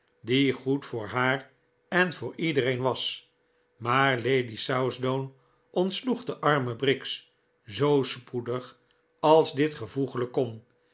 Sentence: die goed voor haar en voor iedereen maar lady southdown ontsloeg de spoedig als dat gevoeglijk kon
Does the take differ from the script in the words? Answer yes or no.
yes